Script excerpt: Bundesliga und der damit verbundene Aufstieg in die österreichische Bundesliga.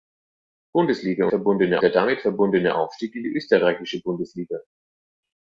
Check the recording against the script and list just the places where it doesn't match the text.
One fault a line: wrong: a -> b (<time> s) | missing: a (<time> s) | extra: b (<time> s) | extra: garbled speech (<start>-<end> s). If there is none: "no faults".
wrong: und -> verbundene (1.3 s)